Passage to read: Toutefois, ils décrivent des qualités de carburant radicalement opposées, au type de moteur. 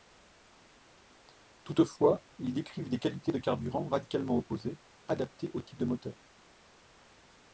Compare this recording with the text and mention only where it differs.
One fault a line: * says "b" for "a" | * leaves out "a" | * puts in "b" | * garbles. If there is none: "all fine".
* puts in "adaptées"